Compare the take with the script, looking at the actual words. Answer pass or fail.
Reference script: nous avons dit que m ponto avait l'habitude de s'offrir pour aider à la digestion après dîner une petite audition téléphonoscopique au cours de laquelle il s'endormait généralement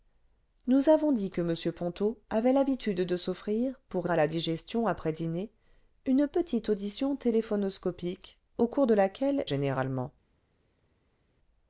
fail